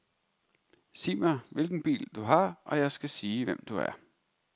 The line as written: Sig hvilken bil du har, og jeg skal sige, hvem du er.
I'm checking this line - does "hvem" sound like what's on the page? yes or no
yes